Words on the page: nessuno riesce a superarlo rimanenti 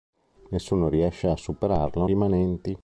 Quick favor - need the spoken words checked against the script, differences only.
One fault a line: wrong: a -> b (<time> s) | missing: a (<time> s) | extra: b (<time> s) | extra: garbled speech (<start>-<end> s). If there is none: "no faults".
no faults